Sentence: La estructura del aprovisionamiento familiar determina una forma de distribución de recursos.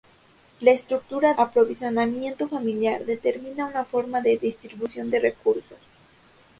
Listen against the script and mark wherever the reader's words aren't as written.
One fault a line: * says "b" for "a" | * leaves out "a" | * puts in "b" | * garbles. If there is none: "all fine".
* leaves out "del"